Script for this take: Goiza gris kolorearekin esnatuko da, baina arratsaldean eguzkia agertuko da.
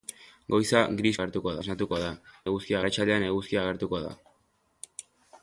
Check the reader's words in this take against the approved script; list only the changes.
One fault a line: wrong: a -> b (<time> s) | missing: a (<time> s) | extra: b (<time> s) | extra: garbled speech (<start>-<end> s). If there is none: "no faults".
wrong: kolorearekin -> agertuko (1.2 s)
wrong: baina -> eguzkia (2.5 s)